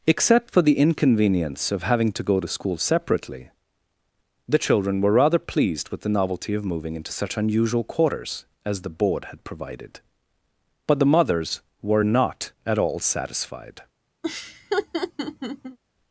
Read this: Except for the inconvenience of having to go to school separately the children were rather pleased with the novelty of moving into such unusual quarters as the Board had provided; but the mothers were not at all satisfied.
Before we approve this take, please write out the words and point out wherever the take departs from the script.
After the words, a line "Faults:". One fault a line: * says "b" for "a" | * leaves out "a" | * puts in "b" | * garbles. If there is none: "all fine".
Except for the inconvenience of having to go to school separately the children were rather pleased with the novelty of moving into such unusual quarters as the Board had provided; but the mothers were not at all satisfied.
Faults:
all fine